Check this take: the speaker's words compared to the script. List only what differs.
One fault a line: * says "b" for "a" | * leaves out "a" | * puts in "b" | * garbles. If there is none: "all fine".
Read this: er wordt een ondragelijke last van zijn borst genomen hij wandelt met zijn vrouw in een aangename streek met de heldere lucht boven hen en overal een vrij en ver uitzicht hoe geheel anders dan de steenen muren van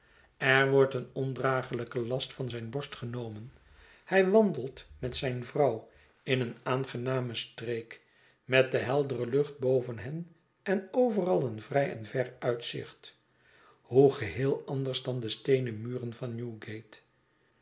all fine